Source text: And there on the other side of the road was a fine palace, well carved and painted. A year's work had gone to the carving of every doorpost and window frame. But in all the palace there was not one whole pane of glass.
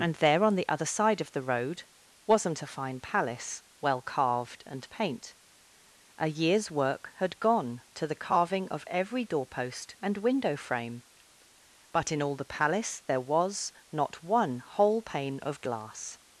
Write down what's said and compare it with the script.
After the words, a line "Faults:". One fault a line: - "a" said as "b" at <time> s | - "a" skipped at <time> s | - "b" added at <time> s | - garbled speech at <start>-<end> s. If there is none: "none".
And there on the other side of the road wasn't a fine palace, well carved and paint. A year's work had gone to the carving of every doorpost and window frame. But in all the palace there was not one whole pane of glass.
Faults:
- "was" said as "wasn't" at 2.2 s
- "painted" said as "paint" at 4.9 s